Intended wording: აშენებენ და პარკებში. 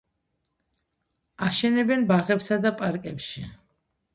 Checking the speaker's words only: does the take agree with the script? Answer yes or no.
no